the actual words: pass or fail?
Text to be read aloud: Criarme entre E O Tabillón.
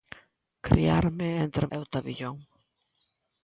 pass